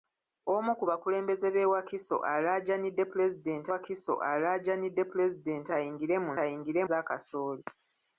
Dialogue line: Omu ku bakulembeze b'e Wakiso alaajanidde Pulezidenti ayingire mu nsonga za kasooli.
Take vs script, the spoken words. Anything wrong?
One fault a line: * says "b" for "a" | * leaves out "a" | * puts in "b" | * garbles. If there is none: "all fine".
* puts in "Wakiso alaajanidde Pulezidenti"
* says "ayingire" for "nsonga"